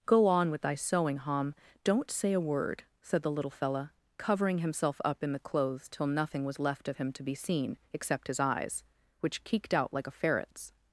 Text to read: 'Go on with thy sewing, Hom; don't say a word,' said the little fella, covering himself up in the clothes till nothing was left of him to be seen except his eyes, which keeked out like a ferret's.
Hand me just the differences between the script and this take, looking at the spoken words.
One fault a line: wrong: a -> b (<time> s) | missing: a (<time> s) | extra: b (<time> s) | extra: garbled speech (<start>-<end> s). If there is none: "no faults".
no faults